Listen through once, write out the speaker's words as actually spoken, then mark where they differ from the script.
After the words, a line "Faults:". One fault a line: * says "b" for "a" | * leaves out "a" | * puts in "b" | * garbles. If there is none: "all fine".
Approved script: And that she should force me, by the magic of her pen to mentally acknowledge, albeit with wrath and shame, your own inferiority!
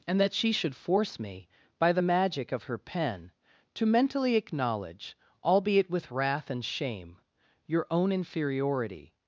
And that she should force me, by the magic of her pen to mentally acknowledge, albeit with wrath and shame, your own inferiority!
Faults:
all fine